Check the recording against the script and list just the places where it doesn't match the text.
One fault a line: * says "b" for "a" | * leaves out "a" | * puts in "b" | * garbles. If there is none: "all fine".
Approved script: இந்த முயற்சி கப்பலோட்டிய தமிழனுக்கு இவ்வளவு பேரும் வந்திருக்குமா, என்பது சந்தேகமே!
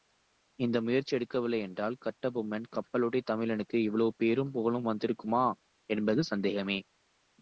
* puts in "எடுக்கவில்லை என்றால் கட்டபொம்மன்"
* puts in "புகழும்"